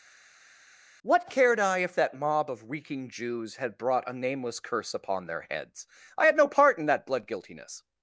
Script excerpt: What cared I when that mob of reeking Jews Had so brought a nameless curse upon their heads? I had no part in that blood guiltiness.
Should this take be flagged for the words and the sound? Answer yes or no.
yes